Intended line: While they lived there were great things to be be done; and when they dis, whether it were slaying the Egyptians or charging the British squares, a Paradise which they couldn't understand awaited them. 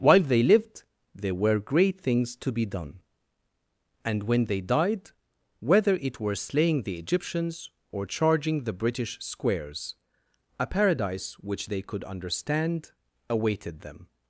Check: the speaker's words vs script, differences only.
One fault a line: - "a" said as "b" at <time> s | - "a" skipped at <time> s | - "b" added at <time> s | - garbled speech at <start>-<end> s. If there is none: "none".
- "be" skipped at 2.7 s
- "dis" said as "died" at 4.6 s
- "couldn't" said as "could" at 11.8 s